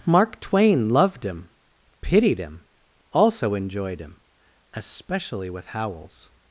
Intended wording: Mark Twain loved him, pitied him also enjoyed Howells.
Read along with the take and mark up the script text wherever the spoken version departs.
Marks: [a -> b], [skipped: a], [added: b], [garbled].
Mark Twain loved him, pitied him also enjoyed [added: him especially with] Howells.